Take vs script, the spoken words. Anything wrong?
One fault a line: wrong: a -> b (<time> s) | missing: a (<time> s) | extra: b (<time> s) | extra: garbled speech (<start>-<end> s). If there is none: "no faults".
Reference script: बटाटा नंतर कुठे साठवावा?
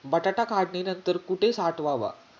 extra: काढणी (0.4 s)